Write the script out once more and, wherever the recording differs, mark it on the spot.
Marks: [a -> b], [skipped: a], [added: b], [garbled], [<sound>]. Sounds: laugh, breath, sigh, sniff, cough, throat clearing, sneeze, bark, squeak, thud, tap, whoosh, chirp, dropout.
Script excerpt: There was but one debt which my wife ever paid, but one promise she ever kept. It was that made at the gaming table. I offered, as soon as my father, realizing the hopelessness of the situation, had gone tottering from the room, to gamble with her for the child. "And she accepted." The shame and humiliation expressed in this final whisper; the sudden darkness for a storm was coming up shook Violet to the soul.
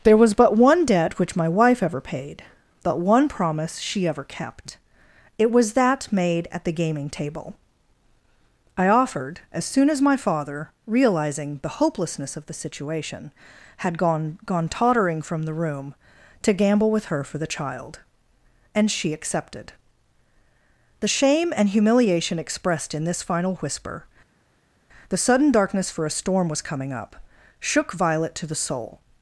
There was but one debt which my wife ever paid, but one promise she ever kept. It was that made at the gaming table. I offered, as soon as my father, realizing the hopelessness of the situation, had gone [added: gone] tottering from the room, to gamble with her for the child. "And she accepted." The shame and humiliation expressed in this final whisper; the sudden darkness for a storm was coming up shook Violet to the soul.